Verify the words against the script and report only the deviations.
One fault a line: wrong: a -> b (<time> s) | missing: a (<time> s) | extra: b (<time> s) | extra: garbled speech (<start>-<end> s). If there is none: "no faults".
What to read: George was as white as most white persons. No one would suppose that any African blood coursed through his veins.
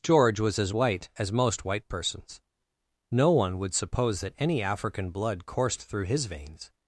no faults